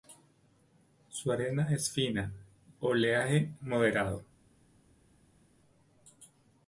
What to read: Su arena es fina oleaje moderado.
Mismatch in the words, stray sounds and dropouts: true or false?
false